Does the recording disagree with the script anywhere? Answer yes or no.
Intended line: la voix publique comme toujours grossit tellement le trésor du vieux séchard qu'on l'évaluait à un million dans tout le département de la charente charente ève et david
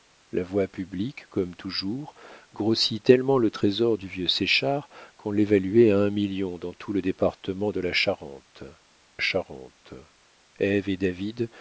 no